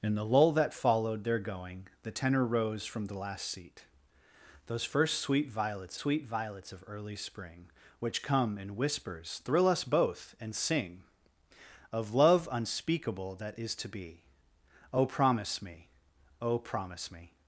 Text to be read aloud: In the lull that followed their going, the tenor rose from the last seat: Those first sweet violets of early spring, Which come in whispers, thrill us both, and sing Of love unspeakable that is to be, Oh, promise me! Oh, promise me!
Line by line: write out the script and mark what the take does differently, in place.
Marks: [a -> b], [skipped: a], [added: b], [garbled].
In the lull that followed their going, the tenor rose from the last seat: Those first sweet violets [added: sweet violets] of early spring, Which come in whispers, thrill us both, and sing Of love unspeakable that is to be, Oh, promise me! Oh, promise me!